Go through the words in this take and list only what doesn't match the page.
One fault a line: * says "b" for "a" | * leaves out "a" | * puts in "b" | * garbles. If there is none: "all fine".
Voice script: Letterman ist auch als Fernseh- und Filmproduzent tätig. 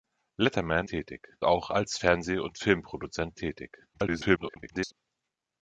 * says "tätig" for "ist"
* garbles